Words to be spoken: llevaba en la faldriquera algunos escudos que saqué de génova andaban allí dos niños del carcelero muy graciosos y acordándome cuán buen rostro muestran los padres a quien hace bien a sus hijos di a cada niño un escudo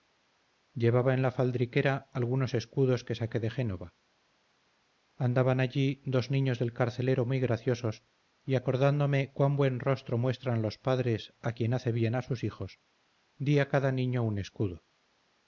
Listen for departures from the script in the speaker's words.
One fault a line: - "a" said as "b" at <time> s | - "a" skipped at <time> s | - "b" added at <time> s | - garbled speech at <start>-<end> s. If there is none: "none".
none